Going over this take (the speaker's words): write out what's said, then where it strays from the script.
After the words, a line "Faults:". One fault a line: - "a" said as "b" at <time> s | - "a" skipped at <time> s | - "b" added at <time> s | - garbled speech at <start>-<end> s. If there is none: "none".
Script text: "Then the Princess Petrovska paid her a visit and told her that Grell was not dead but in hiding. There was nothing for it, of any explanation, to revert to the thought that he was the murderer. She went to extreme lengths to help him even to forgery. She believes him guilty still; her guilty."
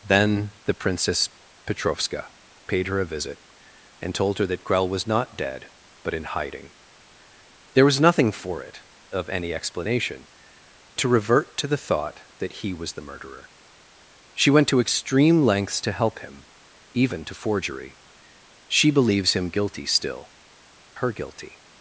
"Then the Princess Petrovska paid her a visit and told her that Grell was not dead but in hiding. There was nothing for it, of any explanation, to revert to the thought that he was the murderer. She went to extreme lengths to help him even to forgery. She believes him guilty still; her guilty."
Faults:
none